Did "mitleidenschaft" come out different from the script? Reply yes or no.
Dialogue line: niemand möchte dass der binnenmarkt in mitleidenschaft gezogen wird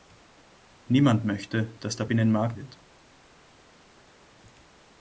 yes